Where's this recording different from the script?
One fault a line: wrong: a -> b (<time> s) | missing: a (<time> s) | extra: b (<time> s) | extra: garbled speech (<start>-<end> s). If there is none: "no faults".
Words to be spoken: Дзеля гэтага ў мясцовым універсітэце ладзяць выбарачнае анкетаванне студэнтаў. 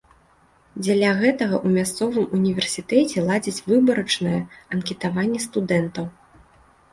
no faults